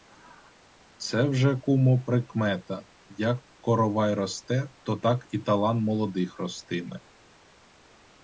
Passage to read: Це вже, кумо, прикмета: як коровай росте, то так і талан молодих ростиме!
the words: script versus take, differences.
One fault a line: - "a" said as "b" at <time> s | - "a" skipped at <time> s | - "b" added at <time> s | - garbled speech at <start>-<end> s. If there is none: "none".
none